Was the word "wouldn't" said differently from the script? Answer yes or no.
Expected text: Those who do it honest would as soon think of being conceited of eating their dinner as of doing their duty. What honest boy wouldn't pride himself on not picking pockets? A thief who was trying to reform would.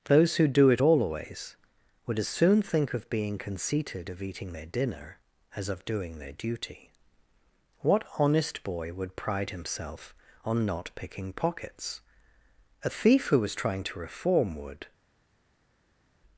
yes